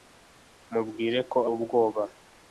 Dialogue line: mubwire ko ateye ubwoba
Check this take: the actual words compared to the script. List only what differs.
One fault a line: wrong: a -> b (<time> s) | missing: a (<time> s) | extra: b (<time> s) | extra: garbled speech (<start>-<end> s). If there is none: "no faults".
missing: ateye (1.4 s)